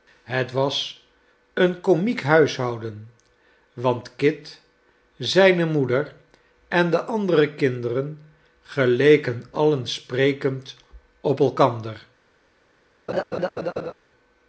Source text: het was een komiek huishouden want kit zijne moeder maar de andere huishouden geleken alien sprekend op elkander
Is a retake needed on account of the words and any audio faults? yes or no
yes